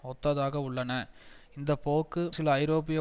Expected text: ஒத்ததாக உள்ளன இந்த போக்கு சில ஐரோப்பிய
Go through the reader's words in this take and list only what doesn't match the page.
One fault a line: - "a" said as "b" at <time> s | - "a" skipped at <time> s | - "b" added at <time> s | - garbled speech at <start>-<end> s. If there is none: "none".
none